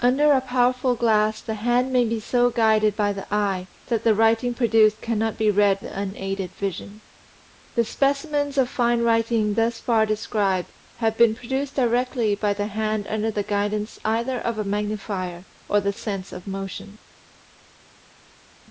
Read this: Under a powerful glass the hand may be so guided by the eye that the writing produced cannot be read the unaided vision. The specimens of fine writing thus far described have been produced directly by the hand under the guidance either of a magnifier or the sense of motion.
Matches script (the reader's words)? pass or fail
pass